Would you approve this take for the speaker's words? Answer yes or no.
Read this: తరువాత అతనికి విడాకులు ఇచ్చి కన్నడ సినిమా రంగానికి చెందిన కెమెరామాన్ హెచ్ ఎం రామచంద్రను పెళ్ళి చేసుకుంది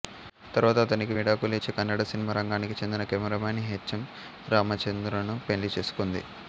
yes